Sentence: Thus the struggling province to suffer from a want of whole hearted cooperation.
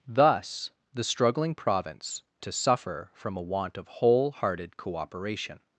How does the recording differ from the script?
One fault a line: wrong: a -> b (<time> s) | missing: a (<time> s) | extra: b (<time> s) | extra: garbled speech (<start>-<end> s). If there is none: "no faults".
no faults